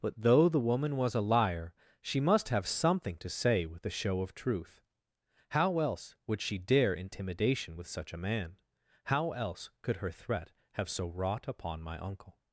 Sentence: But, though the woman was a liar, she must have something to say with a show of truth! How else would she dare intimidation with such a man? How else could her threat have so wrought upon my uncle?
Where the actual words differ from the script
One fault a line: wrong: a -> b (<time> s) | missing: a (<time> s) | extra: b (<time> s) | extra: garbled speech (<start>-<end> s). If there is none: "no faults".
no faults